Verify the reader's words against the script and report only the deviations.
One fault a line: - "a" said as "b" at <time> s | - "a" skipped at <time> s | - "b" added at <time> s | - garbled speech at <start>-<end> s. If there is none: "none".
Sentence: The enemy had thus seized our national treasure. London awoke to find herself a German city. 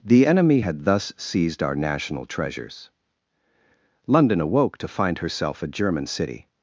- "treasure" said as "treasures" at 2.2 s